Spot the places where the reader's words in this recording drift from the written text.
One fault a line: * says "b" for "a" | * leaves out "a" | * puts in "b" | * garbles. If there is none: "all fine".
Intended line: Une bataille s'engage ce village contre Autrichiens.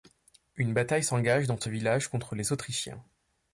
* puts in "dans"
* puts in "les"